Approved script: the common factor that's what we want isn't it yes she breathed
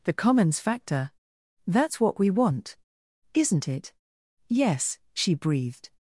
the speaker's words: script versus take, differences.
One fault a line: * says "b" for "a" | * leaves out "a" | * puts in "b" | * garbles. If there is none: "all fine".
* says "commons" for "common"